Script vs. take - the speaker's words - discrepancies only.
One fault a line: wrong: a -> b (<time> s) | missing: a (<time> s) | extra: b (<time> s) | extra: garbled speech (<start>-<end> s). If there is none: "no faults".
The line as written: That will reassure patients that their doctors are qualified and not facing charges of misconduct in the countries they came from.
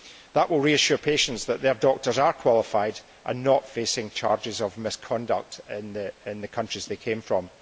no faults